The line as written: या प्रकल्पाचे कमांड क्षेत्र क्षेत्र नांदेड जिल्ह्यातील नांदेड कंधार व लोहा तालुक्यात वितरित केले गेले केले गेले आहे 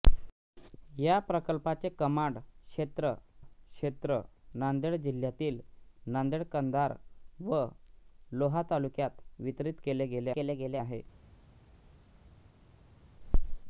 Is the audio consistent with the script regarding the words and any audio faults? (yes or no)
yes